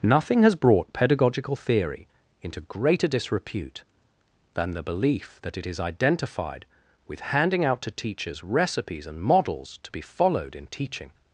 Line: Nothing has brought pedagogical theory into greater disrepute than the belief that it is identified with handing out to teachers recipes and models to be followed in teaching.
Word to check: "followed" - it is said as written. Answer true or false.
true